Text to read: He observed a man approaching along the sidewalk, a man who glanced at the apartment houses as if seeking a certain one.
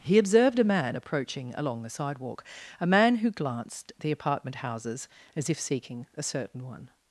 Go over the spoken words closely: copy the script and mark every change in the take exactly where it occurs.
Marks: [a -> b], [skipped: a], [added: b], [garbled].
He observed a man approaching along the sidewalk, a man who glanced [skipped: at] the apartment houses as if seeking a certain one.